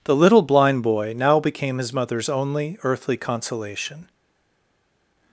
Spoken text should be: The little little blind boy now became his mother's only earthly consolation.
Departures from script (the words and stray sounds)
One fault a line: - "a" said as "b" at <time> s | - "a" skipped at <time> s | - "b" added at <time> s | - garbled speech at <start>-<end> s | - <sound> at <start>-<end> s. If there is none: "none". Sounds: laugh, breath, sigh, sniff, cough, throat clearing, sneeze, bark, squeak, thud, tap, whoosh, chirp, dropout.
- "little" skipped at 0.4 s